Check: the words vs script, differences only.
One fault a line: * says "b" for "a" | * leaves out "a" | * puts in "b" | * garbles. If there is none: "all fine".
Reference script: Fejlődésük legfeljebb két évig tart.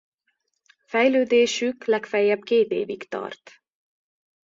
all fine